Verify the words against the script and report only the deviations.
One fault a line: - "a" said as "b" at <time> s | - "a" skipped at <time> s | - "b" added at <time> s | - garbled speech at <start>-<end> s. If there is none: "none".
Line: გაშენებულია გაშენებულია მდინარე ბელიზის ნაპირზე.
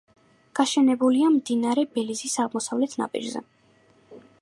- "გაშენებულია" skipped at 1.3 s
- "აღმოსავლეთ" added at 2.5 s